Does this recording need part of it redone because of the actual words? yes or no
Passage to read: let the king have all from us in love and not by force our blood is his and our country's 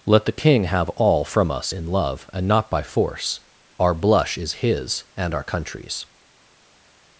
yes